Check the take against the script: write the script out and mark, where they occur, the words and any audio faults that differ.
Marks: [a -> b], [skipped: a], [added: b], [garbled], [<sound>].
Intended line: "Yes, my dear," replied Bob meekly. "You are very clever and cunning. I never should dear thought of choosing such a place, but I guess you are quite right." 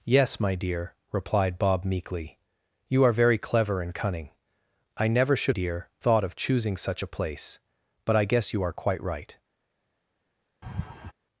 "Yes, my dear," replied Bob meekly. "You are very clever and cunning. I never should dear thought of choosing such a place, but I guess you are quite right." [laugh]